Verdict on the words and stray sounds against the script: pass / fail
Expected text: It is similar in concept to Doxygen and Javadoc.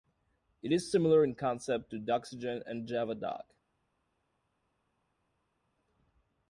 pass